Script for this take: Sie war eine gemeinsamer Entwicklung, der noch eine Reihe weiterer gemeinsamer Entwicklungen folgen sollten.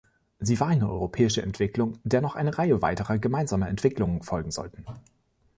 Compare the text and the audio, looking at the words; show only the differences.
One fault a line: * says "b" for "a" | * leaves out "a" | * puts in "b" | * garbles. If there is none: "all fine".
* says "europäische" for "gemeinsamer"